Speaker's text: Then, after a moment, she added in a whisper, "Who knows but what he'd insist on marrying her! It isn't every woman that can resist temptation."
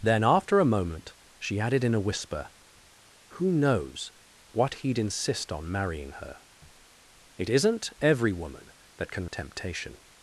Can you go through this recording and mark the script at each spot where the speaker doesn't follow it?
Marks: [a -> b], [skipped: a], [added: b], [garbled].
Then, after a moment, she added in a whisper, "Who knows [skipped: but] what he'd insist on marrying her! It isn't every woman that can [skipped: resist] temptation."